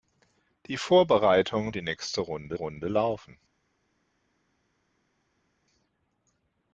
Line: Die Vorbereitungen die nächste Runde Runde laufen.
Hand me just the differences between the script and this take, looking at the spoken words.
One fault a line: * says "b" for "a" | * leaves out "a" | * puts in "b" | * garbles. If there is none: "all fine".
all fine